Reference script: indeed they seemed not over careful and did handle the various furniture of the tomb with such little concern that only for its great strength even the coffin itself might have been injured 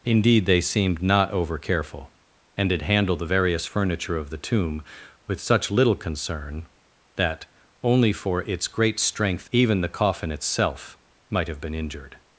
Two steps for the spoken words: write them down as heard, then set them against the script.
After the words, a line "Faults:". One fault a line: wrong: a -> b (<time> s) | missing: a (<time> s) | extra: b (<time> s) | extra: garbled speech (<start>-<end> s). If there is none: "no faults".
indeed they seemed not over careful and did handle the various furniture of the tomb with such little concern that only for its great strength even the coffin itself might have been injured
Faults:
no faults